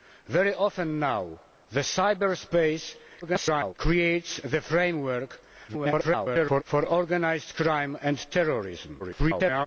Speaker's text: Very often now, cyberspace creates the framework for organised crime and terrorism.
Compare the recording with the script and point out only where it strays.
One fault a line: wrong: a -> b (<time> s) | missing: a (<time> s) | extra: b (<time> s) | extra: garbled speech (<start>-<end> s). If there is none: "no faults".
extra: garbled speech (3.2-3.7 s)
extra: garbled speech (5.7-6.6 s)
extra: garbled speech (9.0-9.7 s)